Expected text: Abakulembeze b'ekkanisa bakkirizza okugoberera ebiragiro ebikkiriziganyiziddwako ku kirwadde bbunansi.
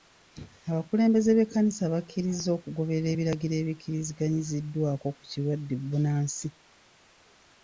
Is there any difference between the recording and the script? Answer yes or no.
no